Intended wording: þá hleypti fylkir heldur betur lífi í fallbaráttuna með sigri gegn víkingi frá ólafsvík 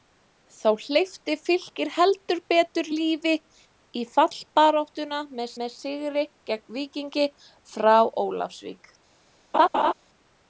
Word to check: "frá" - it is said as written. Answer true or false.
true